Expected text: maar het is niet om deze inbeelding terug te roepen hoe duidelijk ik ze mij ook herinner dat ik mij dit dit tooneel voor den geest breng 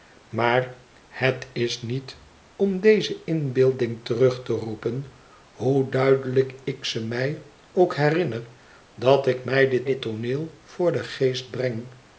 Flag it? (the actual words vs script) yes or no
no